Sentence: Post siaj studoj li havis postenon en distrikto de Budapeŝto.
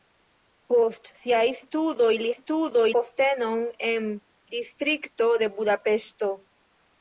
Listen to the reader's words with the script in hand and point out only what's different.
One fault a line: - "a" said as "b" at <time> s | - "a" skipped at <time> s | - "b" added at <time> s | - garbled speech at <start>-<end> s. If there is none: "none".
- "havis" said as "studoj" at 2.4 s